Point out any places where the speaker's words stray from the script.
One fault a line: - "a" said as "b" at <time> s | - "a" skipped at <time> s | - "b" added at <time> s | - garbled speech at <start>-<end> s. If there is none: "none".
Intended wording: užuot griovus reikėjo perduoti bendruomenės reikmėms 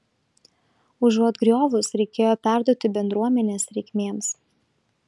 none